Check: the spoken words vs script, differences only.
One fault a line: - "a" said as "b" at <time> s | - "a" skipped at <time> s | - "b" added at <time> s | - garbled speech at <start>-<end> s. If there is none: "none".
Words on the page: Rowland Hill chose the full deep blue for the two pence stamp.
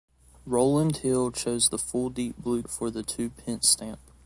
none